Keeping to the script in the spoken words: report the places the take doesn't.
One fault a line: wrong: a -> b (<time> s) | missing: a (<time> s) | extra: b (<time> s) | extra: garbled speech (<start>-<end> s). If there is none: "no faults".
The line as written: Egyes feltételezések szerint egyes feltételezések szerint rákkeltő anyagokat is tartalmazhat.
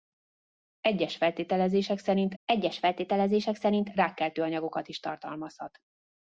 no faults